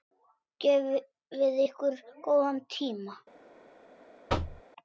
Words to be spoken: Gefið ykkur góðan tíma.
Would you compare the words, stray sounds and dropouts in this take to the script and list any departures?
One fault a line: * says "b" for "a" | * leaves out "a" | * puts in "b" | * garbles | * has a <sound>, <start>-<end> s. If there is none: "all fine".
* has a thud, 4.3-4.6 s